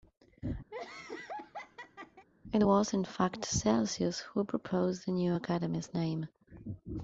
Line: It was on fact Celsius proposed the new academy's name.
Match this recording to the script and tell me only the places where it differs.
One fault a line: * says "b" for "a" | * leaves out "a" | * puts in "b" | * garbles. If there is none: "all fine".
* says "in" for "on"
* puts in "who"